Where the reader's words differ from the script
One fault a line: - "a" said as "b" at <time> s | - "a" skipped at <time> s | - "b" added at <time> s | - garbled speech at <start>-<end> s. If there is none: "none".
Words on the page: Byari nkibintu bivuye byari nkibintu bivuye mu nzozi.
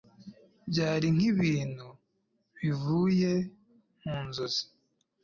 - "byari nkibintu bivuye" skipped at 3.3 s